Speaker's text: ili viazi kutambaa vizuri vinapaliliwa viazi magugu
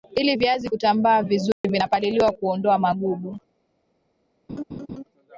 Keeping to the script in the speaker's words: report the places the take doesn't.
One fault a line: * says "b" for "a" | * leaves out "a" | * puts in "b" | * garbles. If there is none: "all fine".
* says "kuondoa" for "viazi"